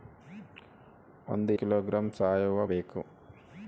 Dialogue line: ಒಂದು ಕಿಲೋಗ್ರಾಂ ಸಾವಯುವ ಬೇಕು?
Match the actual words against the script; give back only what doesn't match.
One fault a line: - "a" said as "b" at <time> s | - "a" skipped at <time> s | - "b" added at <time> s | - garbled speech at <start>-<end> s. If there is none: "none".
none